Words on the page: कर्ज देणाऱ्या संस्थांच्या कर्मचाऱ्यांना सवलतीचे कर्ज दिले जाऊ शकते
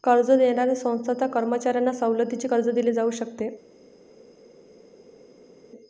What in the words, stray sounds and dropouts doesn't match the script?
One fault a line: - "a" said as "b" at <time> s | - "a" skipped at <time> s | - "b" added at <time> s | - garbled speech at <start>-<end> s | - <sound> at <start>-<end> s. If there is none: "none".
none